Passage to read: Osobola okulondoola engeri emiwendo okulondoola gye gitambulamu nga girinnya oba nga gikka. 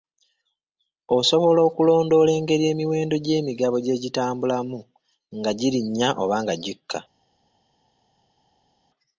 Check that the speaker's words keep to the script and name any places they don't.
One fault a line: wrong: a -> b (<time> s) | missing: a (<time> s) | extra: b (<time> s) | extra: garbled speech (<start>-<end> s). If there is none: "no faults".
wrong: okulondoola -> gy'emigabo (3.2 s)